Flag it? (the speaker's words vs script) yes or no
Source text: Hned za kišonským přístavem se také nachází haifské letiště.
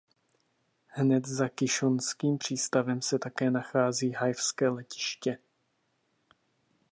no